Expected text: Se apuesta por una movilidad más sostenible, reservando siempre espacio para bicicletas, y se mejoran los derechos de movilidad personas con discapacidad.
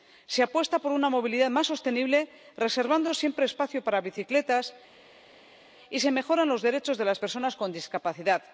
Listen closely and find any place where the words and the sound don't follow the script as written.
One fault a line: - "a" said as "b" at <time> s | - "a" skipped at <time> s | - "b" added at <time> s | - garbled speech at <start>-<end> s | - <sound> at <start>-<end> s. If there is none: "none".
- "movilidad" said as "las" at 7.0 s